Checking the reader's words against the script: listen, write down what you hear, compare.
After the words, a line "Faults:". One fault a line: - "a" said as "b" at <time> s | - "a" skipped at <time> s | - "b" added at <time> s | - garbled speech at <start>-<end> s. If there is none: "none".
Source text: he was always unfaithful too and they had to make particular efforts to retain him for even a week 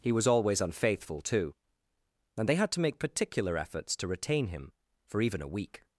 he was always unfaithful too and they had to make particular efforts to retain him for even a week
Faults:
none